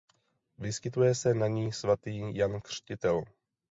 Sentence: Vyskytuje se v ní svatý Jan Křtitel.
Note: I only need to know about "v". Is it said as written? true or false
false